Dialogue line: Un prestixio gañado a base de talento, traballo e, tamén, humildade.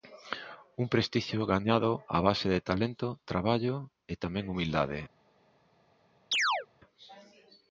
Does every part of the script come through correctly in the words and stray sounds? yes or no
no